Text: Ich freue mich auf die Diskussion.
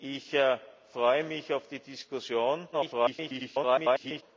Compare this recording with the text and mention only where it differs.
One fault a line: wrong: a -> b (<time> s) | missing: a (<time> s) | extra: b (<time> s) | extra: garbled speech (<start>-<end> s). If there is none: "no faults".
extra: garbled speech (2.7-4.2 s)